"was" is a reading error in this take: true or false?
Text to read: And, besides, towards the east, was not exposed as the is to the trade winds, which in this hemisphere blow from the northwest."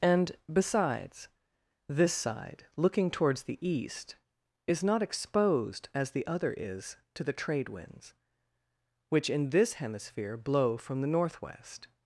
true